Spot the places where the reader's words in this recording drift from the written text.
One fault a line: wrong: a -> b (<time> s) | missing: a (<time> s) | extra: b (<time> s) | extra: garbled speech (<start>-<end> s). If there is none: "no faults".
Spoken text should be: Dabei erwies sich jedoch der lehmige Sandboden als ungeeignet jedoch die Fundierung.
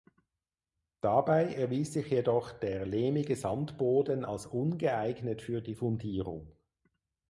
wrong: jedoch -> für (5.4 s)